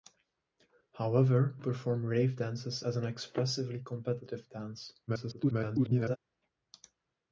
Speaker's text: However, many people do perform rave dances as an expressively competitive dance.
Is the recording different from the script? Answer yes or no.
yes